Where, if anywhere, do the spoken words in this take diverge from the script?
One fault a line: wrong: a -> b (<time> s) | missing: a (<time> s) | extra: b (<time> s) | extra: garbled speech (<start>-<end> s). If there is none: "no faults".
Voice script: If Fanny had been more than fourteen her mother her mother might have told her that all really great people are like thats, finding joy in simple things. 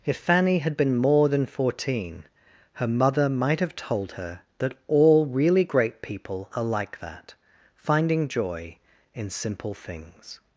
missing: her mother (3.3 s)
wrong: thats -> that (7.0 s)